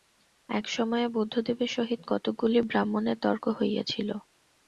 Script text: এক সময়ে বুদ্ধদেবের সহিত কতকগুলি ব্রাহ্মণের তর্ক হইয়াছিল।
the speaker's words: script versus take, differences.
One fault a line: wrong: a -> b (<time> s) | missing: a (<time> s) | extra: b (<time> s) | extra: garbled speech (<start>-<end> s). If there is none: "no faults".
no faults